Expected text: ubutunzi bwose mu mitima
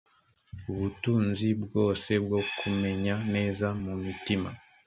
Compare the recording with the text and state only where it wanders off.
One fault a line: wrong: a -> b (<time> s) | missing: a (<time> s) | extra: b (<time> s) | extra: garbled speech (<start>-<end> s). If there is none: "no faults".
extra: bwo kumenya neza (2.2 s)